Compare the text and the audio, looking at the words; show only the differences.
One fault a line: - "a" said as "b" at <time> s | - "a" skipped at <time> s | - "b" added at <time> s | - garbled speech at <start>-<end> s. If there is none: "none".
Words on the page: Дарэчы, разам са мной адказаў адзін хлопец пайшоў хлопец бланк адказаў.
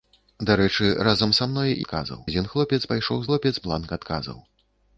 none